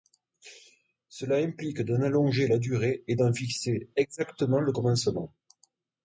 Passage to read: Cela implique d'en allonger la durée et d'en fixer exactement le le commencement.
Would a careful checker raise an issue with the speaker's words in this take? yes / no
yes